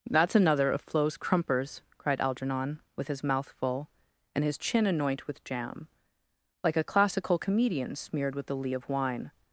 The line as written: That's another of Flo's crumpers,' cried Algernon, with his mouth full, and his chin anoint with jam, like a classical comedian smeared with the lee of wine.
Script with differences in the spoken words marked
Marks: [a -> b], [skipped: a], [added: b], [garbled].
That's another of Flo's crumpers,' cried Algernon, with his mouth full, and his chin anoint with jam, like a classical comedian smeared with the lee of wine.